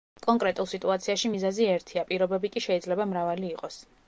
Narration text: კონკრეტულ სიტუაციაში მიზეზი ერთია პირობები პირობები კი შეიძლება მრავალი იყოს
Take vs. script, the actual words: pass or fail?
fail